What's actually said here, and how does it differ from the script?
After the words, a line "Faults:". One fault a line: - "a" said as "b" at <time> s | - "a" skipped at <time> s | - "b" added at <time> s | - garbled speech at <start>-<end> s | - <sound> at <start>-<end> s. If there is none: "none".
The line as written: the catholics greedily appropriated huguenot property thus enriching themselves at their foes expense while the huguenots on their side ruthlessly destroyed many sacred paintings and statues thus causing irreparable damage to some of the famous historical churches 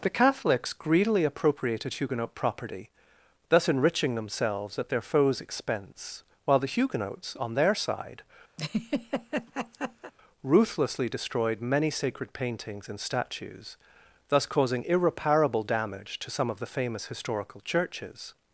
the catholics greedily appropriated huguenot property thus enriching themselves at their foes expense while the huguenots on their side ruthlessly destroyed many sacred paintings and statues thus causing irreparable damage to some of the famous historical churches
Faults:
- laugh at 8.6-10.1 s